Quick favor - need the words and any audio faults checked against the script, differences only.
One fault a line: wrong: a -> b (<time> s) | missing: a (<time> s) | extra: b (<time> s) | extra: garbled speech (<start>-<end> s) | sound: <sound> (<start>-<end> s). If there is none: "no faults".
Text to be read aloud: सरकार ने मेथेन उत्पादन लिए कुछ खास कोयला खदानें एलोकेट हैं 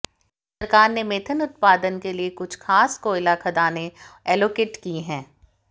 extra: के (2.0 s)
extra: की (4.8 s)